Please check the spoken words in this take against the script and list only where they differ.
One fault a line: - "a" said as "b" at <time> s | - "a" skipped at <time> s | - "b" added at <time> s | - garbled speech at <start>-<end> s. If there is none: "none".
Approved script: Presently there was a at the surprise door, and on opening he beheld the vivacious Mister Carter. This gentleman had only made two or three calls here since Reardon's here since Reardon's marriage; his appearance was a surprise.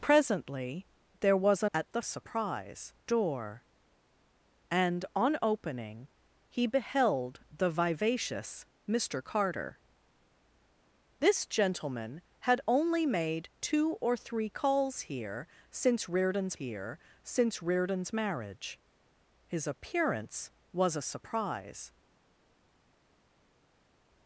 none